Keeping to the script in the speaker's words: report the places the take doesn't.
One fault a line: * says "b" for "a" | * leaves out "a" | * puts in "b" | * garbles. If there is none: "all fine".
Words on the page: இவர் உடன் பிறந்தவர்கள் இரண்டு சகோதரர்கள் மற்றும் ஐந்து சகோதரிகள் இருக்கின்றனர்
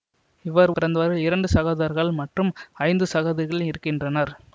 * leaves out "உடன்"